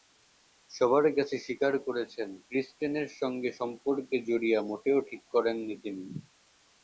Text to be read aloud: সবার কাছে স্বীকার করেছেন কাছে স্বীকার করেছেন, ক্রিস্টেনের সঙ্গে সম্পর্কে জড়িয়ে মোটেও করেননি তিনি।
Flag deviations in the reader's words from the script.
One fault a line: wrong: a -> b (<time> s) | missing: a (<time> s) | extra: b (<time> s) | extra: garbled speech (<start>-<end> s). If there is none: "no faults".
missing: কাছে স্বীকার করেছেন (2.3 s)
extra: ঠিক (5.1 s)